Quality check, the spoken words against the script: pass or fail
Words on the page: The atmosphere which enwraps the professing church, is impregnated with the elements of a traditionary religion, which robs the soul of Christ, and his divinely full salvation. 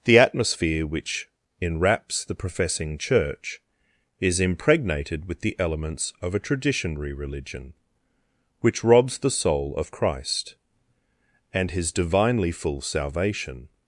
pass